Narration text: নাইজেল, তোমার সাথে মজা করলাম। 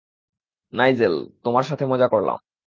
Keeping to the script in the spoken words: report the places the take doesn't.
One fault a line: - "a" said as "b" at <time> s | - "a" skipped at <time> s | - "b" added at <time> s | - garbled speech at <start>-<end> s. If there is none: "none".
none